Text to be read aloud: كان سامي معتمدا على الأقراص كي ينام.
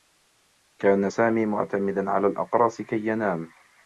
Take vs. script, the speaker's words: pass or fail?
pass